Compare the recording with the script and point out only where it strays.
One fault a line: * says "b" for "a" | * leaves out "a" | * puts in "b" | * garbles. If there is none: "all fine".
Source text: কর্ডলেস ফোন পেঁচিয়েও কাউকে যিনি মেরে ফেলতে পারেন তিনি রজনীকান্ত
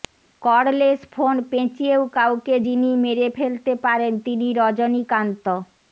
all fine